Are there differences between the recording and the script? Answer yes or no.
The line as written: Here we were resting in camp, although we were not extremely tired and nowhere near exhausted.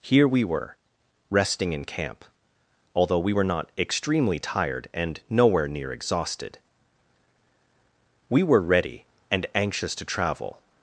yes